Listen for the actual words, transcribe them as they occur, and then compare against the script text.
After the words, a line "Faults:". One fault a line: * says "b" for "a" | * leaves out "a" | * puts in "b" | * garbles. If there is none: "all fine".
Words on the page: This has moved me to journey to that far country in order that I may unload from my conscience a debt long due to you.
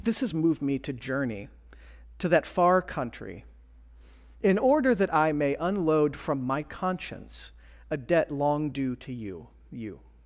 This has moved me to journey to that far country in order that I may unload from my conscience a debt long due to you you.
Faults:
* puts in "you"